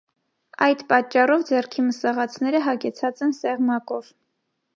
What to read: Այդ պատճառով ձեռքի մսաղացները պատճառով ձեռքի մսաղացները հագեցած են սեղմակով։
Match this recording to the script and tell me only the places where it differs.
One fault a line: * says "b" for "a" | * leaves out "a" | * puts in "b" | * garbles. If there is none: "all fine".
* leaves out "պատճառով ձեռքի մսաղացները"